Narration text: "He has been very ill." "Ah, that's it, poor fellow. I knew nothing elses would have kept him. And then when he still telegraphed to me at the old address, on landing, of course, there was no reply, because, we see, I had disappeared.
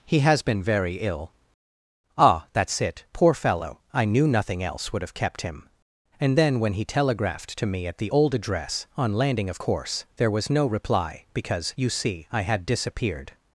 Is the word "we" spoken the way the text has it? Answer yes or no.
no